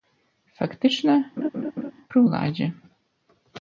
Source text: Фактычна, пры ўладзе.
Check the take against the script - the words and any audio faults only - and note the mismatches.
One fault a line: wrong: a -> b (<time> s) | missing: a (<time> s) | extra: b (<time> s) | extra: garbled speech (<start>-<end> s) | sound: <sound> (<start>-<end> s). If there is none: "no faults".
sound: laugh (1.4-1.9 s)